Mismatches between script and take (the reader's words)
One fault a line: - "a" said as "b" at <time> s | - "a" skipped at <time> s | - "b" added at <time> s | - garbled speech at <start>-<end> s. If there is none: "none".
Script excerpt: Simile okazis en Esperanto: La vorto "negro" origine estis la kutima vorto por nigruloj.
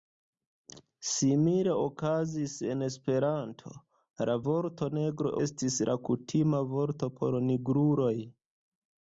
- "origine" skipped at 5.3 s